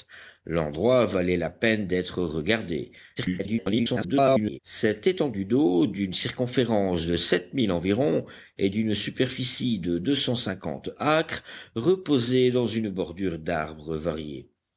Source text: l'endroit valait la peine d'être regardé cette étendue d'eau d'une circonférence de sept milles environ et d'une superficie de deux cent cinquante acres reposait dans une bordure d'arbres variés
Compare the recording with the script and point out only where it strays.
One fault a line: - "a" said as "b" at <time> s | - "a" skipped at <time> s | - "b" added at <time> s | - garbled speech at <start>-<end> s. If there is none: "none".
- garbled speech at 3.2-4.6 s